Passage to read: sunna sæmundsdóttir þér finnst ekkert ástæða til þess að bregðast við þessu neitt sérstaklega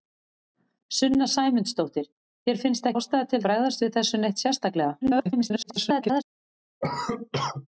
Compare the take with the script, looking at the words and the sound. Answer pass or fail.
fail